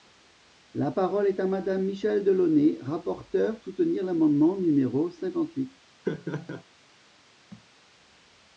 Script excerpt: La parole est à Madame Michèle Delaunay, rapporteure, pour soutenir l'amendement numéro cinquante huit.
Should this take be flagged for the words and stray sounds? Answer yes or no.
yes